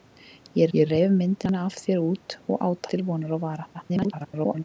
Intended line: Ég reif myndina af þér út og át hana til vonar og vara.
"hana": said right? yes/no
no